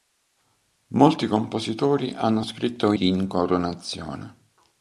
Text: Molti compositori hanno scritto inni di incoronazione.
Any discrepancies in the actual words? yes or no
yes